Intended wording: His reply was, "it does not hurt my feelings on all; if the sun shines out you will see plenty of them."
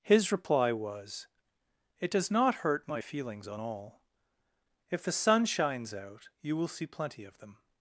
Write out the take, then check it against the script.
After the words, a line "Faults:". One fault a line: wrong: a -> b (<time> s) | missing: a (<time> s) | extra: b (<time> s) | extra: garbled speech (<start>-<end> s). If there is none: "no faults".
His reply was, "it does not hurt my feelings on all; if the sun shines out you will see plenty of them."
Faults:
no faults